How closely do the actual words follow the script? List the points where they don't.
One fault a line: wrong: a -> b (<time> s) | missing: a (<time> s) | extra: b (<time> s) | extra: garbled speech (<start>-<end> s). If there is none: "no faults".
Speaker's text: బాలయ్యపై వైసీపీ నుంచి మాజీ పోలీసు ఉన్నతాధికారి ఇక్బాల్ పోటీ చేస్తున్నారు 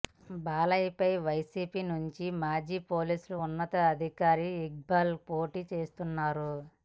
no faults